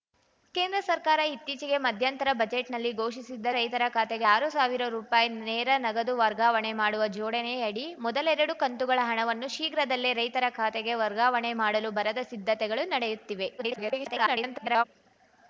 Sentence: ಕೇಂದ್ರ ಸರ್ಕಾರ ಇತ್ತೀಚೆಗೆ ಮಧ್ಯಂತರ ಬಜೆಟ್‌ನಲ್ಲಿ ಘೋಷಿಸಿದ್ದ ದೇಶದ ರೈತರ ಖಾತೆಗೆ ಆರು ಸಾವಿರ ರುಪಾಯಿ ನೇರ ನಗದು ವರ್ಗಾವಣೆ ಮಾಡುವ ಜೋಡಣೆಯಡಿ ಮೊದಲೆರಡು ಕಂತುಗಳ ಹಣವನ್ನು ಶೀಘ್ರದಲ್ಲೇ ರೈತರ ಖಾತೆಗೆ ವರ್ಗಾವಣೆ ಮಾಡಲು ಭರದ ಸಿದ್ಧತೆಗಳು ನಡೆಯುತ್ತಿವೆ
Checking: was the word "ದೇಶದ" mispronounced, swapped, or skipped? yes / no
yes